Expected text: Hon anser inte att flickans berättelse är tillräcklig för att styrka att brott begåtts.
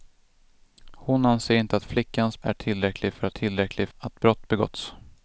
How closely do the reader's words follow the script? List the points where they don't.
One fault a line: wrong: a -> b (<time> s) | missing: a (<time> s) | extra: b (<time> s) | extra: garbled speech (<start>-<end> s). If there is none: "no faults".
missing: berättelse (2.4 s)
wrong: styrka -> tillräcklig (3.3 s)